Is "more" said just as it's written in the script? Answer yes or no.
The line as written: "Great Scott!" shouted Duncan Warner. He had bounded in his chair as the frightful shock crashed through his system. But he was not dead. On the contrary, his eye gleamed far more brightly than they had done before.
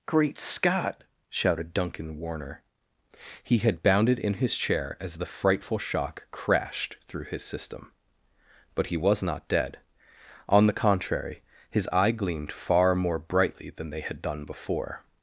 yes